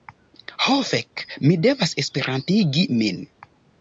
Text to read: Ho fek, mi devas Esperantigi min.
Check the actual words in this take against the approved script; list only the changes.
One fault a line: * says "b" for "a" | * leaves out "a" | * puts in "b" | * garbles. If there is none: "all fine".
all fine